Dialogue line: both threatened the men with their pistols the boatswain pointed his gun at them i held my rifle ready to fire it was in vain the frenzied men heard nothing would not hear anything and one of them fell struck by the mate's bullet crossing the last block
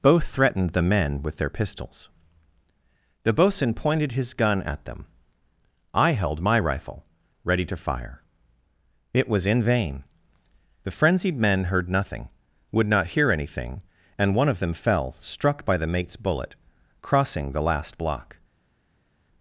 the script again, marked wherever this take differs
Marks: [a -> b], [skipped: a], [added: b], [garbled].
both threatened the men with their pistols the boatswain pointed his gun at them i held my rifle ready to fire it was in vain the frenzied men heard nothing would not hear anything and one of them fell struck by the mate's bullet crossing the last block